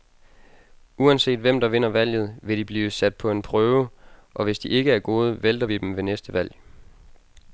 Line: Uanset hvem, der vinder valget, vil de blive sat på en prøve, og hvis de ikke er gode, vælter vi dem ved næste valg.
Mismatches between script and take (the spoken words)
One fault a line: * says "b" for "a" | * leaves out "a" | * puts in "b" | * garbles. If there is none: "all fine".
all fine